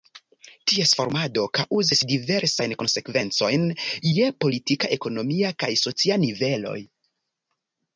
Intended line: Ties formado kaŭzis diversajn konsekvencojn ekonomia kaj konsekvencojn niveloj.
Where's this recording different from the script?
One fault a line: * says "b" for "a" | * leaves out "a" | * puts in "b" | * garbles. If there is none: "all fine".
* puts in "je politika"
* says "socia" for "konsekvencojn"